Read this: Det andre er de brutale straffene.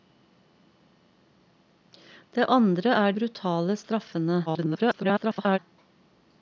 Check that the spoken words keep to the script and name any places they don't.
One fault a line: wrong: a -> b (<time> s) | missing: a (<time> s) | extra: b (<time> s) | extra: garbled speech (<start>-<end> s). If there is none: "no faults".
missing: de (3.1 s)
extra: garbled speech (4.5-5.6 s)